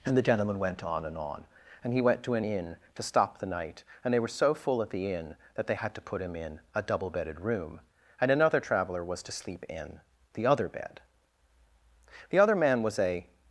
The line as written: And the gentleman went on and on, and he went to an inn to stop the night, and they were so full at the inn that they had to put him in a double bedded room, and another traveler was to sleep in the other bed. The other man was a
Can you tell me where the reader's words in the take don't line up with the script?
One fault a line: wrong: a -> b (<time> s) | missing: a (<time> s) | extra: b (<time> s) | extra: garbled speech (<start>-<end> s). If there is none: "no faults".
no faults